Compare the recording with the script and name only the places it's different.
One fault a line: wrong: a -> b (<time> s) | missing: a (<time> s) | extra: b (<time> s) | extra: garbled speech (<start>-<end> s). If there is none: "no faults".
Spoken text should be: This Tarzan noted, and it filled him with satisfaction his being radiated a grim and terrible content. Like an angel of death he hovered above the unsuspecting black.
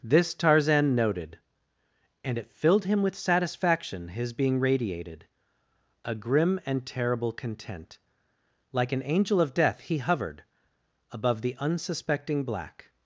no faults